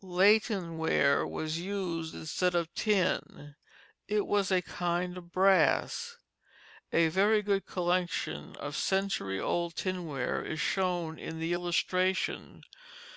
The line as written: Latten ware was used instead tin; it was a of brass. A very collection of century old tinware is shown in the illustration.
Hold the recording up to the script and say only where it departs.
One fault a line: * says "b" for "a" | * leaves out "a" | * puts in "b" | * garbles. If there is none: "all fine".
* puts in "of"
* puts in "kind"
* puts in "good"